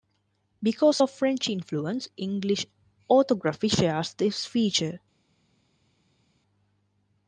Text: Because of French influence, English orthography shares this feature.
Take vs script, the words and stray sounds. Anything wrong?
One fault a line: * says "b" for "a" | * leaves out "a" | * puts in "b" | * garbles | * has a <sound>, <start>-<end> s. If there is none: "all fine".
all fine